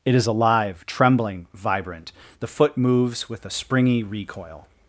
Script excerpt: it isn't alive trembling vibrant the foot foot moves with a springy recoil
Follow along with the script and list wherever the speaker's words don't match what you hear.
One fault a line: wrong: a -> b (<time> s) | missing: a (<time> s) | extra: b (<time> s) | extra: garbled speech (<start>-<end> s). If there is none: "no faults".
wrong: isn't -> is (0.1 s)
missing: foot (2.8 s)